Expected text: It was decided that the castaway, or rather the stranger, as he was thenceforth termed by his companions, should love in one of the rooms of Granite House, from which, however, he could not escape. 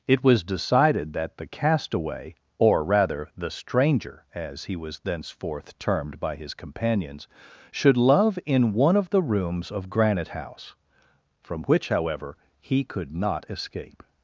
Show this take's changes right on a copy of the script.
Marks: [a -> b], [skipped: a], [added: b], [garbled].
It was decided that the castaway, or rather the stranger, as he was thenceforth termed by his companions, should love in one of the rooms of Granite House, from which, however, he could not escape.